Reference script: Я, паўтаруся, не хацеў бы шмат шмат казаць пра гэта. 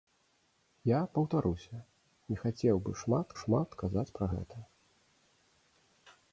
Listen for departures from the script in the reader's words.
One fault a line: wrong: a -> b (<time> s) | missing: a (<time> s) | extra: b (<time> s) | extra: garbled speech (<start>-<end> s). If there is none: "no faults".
no faults